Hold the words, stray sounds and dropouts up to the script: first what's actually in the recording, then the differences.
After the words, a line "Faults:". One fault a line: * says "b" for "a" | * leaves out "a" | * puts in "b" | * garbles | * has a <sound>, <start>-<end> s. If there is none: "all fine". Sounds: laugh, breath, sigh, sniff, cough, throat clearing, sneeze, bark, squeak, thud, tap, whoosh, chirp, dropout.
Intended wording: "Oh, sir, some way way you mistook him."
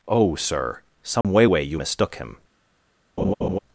"Oh, sir, some way way you mistook him."
Faults:
* has a dropout, 1.2-1.2 s
* has a laugh, 3.2-3.6 s